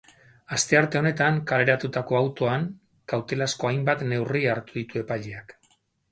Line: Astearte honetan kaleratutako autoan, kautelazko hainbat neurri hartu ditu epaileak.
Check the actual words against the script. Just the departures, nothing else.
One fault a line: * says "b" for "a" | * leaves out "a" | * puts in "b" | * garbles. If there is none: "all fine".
all fine